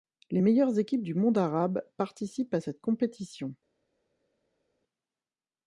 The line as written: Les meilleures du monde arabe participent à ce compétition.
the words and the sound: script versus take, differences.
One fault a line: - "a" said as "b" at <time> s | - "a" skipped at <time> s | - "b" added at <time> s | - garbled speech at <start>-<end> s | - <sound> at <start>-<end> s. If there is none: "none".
- "équipes" added at 0.8 s
- "ce" said as "cette" at 2.6 s